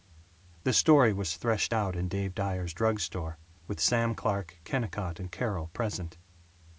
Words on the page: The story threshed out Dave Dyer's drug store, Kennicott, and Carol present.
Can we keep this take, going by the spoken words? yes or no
no